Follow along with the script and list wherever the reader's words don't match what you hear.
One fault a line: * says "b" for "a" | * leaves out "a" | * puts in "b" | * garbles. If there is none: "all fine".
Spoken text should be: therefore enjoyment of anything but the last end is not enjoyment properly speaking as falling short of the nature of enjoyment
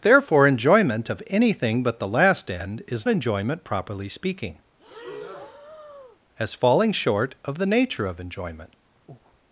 * leaves out "not"